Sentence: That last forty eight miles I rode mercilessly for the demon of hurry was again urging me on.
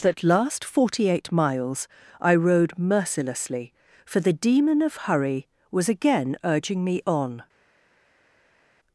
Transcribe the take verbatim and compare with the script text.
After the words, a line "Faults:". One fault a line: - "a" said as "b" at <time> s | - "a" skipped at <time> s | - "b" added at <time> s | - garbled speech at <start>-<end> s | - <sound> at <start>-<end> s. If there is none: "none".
That last forty eight miles I rode mercilessly for the demon of hurry was again urging me on.
Faults:
none